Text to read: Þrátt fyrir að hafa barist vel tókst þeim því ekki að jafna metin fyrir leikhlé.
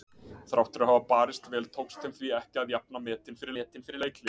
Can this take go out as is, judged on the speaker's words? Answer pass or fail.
fail